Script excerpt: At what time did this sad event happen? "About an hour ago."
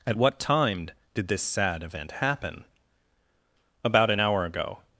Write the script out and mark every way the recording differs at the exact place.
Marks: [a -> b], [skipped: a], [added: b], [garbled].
At what time did this sad event happen? "About an hour ago."